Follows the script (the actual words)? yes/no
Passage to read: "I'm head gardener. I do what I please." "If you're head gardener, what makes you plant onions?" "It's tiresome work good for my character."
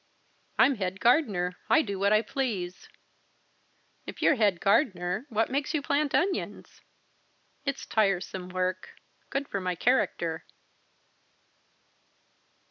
yes